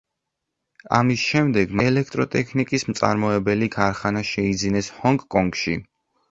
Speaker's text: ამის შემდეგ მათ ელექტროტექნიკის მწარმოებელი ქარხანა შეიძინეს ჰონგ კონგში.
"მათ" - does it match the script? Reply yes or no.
no